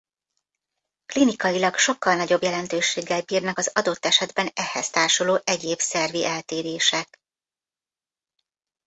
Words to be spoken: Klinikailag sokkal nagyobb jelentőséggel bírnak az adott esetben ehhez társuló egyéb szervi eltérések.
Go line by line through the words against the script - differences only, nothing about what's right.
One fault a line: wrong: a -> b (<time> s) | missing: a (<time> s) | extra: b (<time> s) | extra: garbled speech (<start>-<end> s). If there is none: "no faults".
no faults